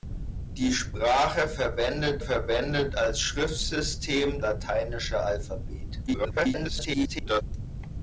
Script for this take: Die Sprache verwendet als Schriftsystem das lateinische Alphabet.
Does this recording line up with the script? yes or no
no